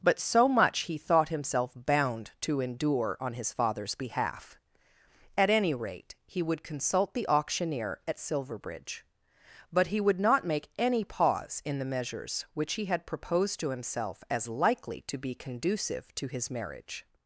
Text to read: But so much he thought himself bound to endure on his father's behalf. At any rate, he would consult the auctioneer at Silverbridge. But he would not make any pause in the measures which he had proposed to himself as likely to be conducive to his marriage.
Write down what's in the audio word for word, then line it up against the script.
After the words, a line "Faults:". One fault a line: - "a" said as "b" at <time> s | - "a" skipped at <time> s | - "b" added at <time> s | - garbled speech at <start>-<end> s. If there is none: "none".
But so much he thought himself bound to endure on his father's behalf. At any rate, he would consult the auctioneer at Silverbridge. But he would not make any pause in the measures which he had proposed to himself as likely to be conducive to his marriage.
Faults:
none